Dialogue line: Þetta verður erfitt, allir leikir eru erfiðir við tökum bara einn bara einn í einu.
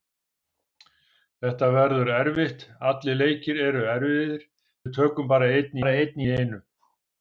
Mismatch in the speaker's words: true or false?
false